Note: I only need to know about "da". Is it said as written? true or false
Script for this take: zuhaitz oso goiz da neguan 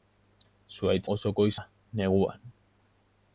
true